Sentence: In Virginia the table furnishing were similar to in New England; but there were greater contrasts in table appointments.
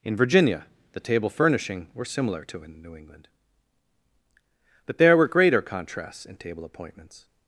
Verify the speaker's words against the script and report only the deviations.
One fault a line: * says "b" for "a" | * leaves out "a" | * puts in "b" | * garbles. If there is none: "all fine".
all fine